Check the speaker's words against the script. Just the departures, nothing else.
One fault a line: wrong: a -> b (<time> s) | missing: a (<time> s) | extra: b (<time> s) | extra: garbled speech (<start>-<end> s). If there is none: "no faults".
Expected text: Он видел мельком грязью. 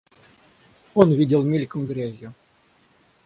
no faults